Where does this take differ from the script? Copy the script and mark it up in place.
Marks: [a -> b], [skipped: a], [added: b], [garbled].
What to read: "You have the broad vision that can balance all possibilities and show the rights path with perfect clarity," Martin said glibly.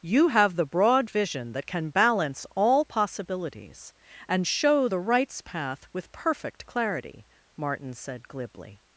"You have the broad vision that can balance all possibilities and show the rights path with perfect clarity," Martin said glibly.